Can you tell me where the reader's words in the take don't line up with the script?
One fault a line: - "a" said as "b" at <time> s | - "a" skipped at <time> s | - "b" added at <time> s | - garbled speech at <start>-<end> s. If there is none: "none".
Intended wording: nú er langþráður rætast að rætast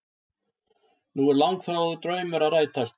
- "rætast" said as "draumur" at 2.1 s